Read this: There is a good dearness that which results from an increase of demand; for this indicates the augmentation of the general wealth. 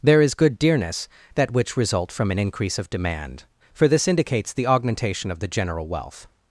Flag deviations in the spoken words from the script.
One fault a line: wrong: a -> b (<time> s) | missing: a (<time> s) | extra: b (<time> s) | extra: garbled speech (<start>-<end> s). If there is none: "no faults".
missing: a (0.3 s)
wrong: results -> result (1.8 s)